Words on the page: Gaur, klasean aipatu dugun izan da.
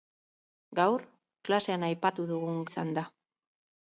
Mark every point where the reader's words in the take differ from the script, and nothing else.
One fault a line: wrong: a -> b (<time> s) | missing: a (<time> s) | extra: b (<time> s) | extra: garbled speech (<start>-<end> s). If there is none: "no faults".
no faults